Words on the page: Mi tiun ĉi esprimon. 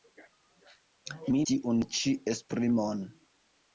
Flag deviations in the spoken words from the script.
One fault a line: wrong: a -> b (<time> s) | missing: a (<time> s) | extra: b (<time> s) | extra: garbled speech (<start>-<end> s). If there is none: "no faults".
no faults